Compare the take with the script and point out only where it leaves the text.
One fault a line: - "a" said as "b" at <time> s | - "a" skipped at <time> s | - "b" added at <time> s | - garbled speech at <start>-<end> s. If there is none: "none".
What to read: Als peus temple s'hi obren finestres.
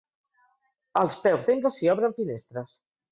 none